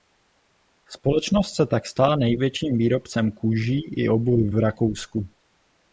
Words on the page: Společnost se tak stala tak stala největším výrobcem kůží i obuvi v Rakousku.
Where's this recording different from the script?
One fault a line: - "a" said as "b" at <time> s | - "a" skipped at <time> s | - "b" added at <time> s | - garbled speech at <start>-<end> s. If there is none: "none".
- "tak stala" skipped at 2.1 s